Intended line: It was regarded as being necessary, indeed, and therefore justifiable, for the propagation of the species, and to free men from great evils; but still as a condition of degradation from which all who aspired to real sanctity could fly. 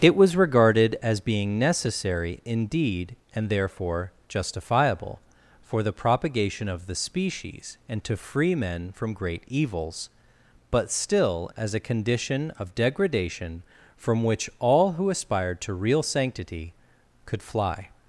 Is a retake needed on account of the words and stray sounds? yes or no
no